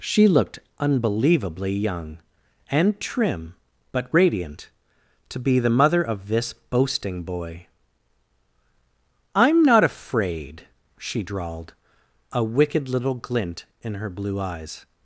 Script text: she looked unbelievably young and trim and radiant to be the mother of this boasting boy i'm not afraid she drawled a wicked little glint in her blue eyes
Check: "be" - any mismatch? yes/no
no